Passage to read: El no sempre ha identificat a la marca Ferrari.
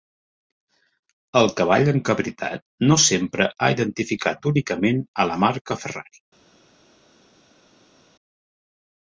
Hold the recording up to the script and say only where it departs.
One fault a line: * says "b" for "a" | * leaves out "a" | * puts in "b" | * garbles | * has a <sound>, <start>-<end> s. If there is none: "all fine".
* puts in "cavall encabritat"
* puts in "únicament"